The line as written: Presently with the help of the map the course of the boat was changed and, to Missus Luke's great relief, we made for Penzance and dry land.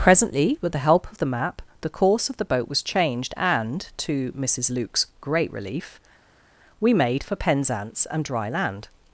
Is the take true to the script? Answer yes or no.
yes